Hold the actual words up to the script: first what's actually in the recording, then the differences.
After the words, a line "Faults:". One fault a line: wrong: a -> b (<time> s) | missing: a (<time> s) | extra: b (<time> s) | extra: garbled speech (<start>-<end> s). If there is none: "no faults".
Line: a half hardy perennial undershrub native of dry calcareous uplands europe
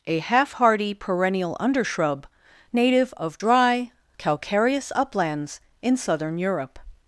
a half hardy perennial undershrub native of dry calcareous uplands in southern europe
Faults:
extra: in southern (5.8 s)